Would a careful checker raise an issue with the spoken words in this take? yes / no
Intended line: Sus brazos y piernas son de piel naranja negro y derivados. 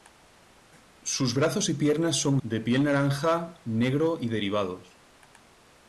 no